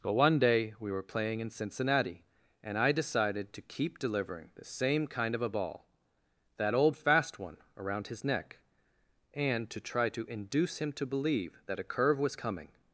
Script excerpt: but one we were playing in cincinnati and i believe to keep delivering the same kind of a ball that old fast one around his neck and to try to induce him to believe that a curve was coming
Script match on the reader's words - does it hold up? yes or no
no